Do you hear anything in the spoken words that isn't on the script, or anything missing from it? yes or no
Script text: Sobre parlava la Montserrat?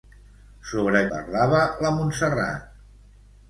no